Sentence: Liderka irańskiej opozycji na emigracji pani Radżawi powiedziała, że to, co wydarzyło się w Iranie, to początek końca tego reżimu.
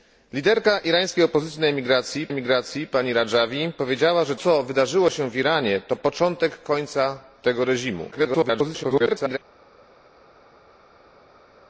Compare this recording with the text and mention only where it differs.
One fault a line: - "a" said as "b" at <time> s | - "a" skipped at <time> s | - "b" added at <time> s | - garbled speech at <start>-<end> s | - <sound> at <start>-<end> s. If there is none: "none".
- "emigracji" added at 2.3 s
- "to" skipped at 4.3 s
- garbled speech at 8.1-9.4 s